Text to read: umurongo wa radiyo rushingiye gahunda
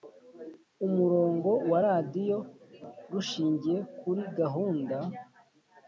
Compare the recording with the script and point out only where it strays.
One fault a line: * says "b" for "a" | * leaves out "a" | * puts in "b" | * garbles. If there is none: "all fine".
* puts in "kuri"